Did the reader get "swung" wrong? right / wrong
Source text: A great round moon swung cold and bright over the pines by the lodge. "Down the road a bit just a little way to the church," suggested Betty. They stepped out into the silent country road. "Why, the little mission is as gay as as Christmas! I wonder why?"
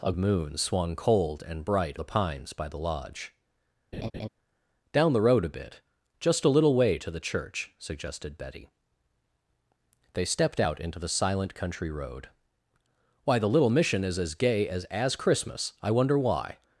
right